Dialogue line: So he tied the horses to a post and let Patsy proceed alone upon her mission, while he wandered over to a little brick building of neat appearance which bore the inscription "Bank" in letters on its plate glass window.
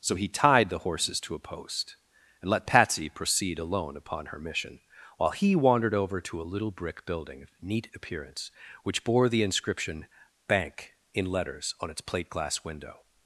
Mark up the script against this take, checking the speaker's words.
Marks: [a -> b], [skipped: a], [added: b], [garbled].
So he tied the horses to a post and let Patsy proceed alone upon her mission, while he wandered over to a little brick building of neat appearance which bore the inscription "Bank" in letters on its plate glass window.